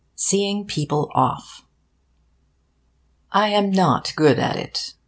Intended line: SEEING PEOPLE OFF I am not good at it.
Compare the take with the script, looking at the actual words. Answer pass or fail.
pass